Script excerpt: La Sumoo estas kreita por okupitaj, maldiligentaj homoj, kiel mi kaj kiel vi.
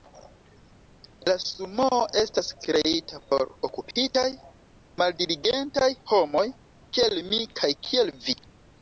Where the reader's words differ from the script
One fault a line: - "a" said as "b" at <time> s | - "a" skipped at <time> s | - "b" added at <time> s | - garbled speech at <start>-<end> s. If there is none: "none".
none